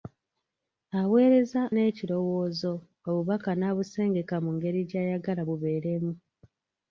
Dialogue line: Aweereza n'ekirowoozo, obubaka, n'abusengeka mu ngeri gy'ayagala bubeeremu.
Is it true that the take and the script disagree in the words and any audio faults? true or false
false